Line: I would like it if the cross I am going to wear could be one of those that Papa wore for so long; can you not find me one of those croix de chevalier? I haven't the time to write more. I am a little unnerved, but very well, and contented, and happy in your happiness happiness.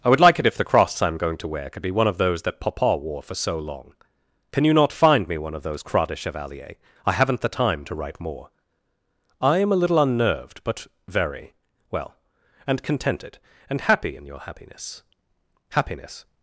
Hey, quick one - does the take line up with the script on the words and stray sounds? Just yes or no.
yes